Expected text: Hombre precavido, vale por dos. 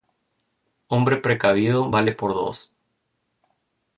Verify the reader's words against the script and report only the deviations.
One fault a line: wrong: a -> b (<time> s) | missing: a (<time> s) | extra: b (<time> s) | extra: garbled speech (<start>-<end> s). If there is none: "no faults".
no faults